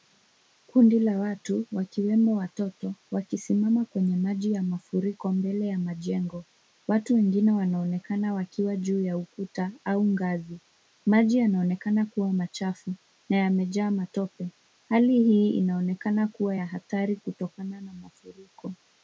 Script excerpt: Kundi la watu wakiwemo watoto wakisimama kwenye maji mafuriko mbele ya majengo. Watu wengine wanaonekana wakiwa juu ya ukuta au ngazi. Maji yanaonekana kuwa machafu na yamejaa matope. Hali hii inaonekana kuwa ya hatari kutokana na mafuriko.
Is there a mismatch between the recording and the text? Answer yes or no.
yes